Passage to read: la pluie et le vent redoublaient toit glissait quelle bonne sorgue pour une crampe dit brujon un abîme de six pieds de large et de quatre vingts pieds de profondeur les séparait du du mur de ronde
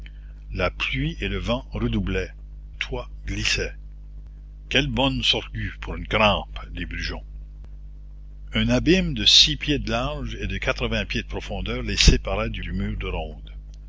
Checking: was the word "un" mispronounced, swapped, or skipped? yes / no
no